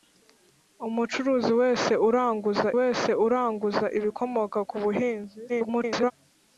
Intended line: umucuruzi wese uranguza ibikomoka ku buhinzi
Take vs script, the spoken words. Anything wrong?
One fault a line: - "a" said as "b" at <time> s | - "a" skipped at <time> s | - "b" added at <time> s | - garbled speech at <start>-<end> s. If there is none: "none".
- "wese uranguza" added at 2.8 s
- garbled speech at 5.5-6.1 s